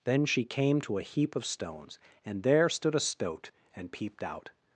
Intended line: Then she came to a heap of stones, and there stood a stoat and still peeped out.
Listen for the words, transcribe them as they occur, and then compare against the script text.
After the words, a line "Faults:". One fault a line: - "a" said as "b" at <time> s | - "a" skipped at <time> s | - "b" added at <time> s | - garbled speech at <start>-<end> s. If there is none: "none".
Then she came to a heap of stones, and there stood a stoat and peeped out.
Faults:
- "still" skipped at 3.9 s